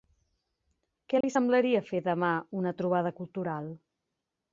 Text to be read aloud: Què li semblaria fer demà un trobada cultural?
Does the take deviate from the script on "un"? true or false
true